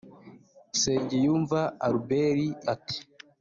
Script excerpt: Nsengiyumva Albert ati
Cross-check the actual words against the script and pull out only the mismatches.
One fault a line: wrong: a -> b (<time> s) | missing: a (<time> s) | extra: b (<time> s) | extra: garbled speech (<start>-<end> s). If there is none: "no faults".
no faults